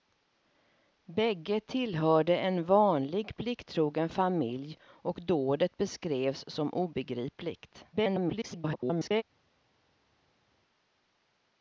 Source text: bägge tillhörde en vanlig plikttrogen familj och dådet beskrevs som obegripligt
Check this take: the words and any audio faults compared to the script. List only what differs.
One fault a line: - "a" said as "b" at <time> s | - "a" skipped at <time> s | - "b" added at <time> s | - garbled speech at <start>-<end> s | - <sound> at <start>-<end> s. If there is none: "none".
- garbled speech at 7.9-9.2 s